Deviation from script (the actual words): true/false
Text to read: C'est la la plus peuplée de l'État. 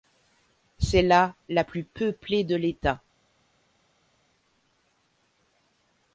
false